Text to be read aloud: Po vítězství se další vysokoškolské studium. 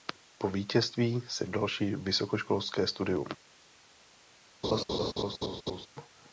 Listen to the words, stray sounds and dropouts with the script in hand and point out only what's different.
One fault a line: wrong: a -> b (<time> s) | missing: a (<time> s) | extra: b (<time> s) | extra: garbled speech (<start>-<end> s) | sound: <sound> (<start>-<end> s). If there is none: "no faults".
sound: laugh (4.6-5.9 s)